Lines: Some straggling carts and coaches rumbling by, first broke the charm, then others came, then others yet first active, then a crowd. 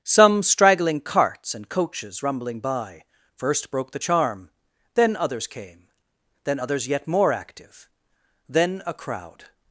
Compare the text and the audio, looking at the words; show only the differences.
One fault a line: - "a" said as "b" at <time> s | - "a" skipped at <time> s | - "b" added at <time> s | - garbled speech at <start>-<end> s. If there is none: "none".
- "first" said as "more" at 7.1 s